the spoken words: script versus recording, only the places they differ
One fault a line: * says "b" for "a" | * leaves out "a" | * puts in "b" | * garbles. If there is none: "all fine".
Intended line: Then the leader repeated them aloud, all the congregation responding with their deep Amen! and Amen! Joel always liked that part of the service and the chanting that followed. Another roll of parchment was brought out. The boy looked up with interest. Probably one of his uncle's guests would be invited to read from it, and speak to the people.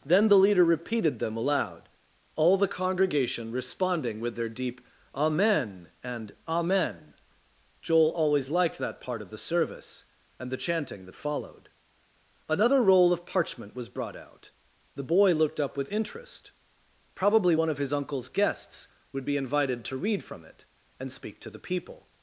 all fine